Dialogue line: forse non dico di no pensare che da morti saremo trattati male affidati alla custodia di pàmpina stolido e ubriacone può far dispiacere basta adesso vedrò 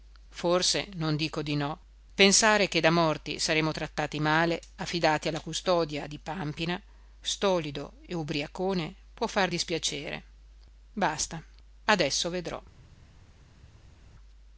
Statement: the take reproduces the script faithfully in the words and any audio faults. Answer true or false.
true